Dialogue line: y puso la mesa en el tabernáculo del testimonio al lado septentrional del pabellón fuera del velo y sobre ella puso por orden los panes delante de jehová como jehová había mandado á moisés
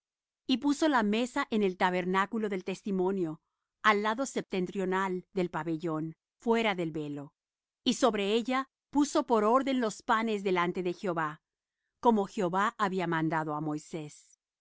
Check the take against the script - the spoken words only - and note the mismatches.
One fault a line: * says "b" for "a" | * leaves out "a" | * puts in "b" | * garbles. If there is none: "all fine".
all fine